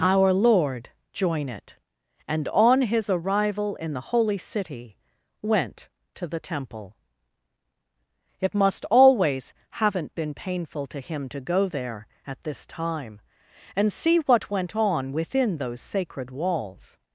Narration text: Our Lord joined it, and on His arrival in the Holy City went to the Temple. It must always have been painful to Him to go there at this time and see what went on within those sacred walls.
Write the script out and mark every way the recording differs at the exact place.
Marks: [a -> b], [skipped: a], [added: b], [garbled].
Our Lord [joined -> join] it, and on His arrival in the Holy City went to the Temple. It must always [have -> haven't] been painful to Him to go there at this time and see what went on within those sacred walls.